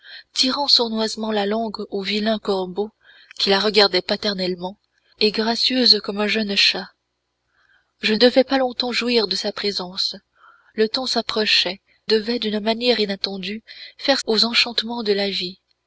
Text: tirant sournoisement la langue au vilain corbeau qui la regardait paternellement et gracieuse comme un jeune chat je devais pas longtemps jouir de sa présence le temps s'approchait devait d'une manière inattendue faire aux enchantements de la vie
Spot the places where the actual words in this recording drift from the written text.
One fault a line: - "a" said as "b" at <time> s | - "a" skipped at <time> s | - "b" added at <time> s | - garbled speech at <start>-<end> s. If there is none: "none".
none